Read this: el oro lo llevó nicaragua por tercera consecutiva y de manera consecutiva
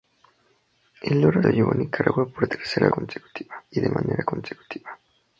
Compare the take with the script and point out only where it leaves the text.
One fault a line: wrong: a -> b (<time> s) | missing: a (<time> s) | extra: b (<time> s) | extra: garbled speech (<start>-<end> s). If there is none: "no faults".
no faults